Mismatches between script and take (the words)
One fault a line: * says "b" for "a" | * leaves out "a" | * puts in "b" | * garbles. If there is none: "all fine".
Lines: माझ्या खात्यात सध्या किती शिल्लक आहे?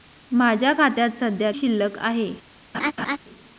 * leaves out "किती"